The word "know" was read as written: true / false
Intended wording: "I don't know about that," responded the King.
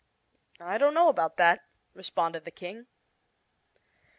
true